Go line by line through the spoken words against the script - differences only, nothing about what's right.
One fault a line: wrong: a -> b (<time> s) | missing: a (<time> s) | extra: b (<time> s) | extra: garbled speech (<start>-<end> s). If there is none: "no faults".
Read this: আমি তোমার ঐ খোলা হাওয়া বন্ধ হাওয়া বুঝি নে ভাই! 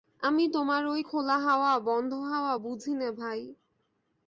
no faults